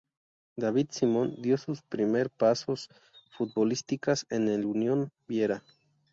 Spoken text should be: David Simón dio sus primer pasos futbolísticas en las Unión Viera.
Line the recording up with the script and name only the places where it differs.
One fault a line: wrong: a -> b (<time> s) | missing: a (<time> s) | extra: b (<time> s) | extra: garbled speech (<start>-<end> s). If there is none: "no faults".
wrong: las -> el (4.5 s)